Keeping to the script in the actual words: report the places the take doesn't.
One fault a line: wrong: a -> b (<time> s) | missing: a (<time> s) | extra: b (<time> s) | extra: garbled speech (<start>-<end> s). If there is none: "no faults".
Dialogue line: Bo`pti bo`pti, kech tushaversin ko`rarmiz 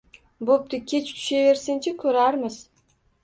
missing: bo`pti (0.8 s)
extra: chi (1.9 s)